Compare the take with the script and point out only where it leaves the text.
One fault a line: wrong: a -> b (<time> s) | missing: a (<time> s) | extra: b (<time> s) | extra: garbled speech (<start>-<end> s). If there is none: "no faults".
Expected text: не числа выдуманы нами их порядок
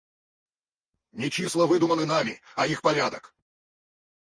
extra: а (2.5 s)